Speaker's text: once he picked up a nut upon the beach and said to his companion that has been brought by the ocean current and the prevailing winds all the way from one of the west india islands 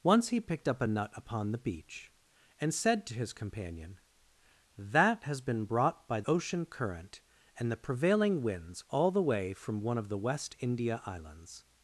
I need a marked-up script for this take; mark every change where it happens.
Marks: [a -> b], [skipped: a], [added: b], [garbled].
once he picked up a nut upon the beach and said to his companion that has been brought by [skipped: the] ocean current and the prevailing winds all the way from one of the west india islands